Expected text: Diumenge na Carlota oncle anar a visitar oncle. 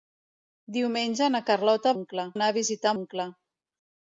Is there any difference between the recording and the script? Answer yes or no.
no